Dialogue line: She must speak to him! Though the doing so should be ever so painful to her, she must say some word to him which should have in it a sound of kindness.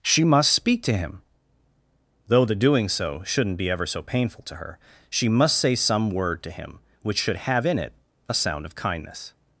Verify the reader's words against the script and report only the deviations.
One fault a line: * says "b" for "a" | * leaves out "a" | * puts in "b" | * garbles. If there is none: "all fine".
* says "shouldn't" for "should"